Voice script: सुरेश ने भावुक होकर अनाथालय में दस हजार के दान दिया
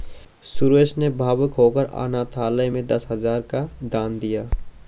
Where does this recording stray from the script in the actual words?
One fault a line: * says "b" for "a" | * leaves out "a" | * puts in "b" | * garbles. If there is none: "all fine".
* says "का" for "के"